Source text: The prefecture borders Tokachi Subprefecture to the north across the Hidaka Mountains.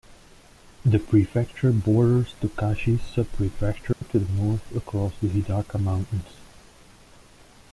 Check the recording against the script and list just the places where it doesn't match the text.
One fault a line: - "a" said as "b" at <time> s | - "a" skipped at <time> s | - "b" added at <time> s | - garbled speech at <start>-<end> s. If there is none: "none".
none